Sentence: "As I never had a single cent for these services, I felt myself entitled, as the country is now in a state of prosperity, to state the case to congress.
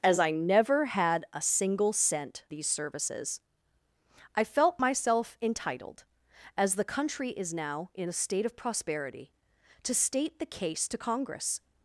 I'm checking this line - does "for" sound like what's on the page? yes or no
no